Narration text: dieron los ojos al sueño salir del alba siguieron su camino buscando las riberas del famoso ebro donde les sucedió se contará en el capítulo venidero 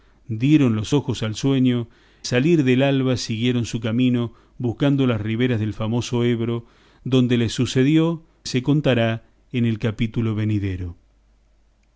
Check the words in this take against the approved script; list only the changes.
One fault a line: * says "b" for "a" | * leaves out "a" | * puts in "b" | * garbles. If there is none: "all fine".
all fine